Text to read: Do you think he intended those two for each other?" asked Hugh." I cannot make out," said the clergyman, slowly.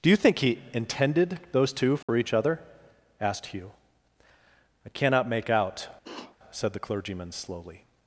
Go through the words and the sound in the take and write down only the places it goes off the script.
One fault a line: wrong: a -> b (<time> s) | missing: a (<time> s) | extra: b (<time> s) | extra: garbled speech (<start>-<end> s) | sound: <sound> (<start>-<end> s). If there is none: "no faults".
sound: dropout (2.0-2.1 s)
sound: sniff (6.0-6.4 s)